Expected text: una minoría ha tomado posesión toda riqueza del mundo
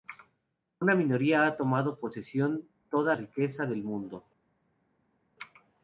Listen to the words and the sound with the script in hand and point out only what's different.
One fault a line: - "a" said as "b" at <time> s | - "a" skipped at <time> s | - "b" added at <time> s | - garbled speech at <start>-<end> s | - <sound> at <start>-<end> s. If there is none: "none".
none